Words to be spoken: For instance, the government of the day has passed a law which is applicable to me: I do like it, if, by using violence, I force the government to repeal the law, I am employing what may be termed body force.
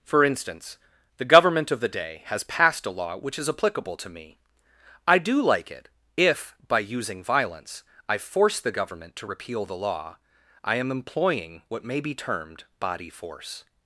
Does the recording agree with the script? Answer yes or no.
yes